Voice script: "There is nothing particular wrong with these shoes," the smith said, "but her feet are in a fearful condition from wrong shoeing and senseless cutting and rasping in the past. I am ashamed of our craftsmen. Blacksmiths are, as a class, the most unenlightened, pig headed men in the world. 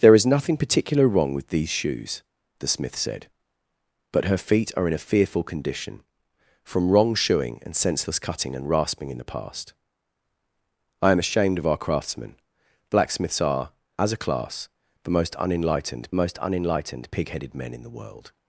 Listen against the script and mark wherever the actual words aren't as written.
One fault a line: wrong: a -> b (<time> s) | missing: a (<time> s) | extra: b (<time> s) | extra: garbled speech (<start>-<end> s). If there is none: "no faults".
extra: most unenlightened (16.1 s)